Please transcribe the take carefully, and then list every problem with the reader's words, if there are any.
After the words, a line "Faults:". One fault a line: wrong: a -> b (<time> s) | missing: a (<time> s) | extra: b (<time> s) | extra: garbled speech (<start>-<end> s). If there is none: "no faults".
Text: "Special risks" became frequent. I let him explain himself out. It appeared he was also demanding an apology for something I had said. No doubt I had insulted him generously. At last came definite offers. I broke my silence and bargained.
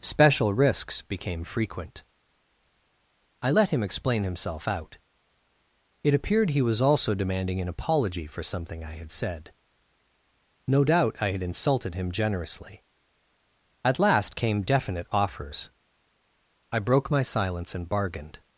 "Special risks" became frequent. I let him explain himself out. It appeared he was also demanding an apology for something I had said. No doubt I had insulted him generously. At last came definite offers. I broke my silence and bargained.
Faults:
no faults